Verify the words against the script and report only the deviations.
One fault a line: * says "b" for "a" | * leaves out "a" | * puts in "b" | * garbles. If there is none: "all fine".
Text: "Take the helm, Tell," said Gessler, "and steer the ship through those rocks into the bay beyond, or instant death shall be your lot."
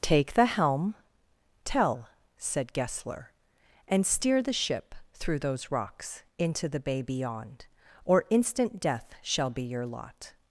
all fine